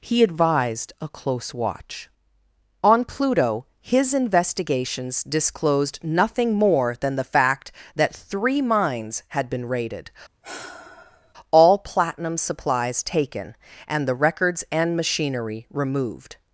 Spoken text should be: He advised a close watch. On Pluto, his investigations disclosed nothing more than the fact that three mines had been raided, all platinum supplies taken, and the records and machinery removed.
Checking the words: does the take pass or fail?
pass